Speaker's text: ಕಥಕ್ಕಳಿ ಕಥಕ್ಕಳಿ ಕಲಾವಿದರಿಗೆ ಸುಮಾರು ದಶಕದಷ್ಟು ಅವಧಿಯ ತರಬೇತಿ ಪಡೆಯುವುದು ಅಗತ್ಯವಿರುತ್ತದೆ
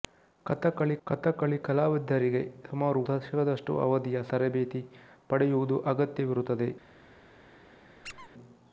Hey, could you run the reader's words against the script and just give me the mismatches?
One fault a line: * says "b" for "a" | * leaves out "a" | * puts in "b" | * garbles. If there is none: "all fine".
all fine